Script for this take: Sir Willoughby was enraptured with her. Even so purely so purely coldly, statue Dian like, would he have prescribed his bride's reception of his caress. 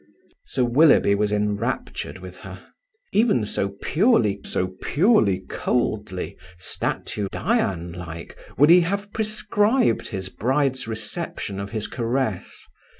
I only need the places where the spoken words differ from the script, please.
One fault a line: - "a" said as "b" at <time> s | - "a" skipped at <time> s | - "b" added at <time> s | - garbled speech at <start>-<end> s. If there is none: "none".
none